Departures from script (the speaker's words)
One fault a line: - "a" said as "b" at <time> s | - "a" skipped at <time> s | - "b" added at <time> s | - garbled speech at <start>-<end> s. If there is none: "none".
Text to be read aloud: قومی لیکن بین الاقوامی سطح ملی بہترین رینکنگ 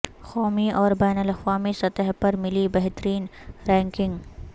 - "لیکن" said as "اور" at 0.7 s
- "پر" added at 2.2 s